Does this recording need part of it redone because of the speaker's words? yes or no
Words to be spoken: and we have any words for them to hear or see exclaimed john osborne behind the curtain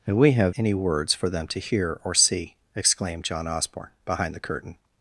no